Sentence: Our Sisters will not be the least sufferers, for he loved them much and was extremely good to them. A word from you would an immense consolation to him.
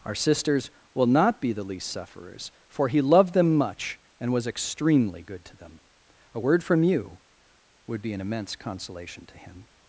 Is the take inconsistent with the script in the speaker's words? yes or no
yes